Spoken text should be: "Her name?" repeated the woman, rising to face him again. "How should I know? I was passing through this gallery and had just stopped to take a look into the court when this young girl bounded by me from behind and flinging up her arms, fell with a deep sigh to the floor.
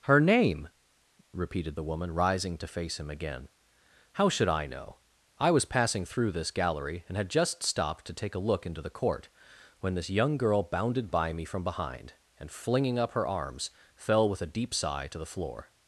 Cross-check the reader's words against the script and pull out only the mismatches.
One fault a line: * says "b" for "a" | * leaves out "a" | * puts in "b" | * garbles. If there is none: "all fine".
all fine